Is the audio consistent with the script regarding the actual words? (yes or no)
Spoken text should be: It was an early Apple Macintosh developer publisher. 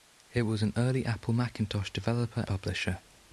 yes